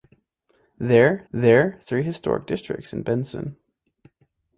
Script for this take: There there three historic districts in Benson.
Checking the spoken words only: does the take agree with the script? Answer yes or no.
yes